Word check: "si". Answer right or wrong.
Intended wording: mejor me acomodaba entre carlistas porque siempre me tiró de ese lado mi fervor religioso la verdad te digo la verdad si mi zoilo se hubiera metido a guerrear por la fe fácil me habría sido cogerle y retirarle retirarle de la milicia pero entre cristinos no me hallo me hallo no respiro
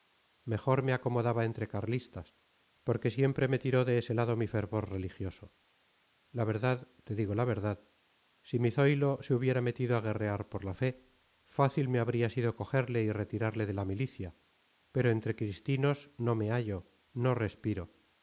right